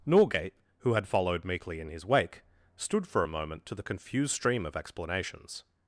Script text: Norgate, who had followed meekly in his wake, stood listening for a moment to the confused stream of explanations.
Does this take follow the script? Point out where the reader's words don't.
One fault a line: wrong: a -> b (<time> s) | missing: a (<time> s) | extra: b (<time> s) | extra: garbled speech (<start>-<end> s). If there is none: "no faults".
missing: listening (3.1 s)